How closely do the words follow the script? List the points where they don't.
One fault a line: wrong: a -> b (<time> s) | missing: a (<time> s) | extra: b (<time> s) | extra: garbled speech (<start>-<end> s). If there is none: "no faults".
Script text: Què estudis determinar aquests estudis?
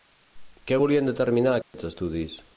wrong: estudis -> volien (0.8 s)